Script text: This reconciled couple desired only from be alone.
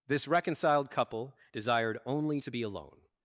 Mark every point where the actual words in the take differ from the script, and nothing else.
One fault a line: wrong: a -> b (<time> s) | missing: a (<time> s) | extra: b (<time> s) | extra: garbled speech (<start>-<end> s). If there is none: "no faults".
wrong: from -> to (2.4 s)